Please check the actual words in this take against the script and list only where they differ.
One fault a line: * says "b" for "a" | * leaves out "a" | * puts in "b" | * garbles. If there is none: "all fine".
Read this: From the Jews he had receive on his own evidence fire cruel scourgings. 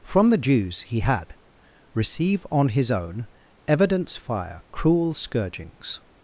all fine